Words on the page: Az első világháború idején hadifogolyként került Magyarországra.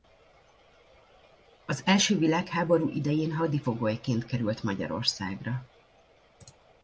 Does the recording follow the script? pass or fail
pass